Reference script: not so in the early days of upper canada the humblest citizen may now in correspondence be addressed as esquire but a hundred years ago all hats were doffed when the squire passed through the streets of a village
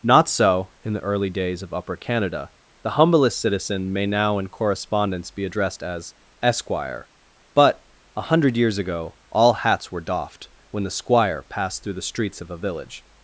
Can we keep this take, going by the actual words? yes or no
yes